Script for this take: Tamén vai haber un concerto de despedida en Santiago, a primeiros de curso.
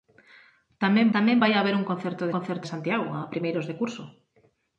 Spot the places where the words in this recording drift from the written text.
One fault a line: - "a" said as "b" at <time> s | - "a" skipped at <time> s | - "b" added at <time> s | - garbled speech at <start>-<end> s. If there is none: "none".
- "tamén" added at 1.1 s
- "despedida" said as "concerto" at 2.4 s